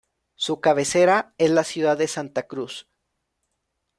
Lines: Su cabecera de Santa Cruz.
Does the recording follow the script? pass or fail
fail